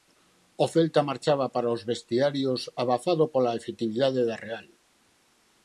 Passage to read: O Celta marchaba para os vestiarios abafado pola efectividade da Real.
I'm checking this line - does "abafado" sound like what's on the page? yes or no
yes